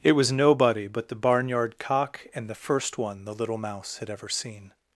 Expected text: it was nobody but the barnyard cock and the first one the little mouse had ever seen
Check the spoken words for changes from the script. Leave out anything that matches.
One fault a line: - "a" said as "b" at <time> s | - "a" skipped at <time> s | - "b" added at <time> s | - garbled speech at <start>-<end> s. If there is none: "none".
none